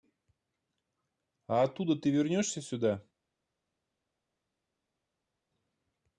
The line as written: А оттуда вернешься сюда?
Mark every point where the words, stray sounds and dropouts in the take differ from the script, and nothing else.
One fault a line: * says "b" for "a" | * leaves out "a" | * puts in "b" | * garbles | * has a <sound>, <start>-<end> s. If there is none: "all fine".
* puts in "ты"